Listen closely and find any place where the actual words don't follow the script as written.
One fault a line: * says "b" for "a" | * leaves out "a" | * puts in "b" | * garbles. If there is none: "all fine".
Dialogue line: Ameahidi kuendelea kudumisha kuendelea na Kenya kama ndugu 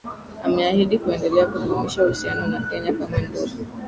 * says "uhusiano" for "kuendelea"